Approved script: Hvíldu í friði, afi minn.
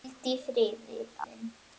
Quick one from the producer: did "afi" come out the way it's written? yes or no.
no